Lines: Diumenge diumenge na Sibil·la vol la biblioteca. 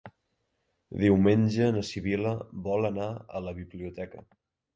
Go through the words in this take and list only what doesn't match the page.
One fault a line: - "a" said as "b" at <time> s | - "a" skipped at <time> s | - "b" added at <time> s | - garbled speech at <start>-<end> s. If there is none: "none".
- "diumenge" skipped at 1.7 s
- "anar a" added at 2.9 s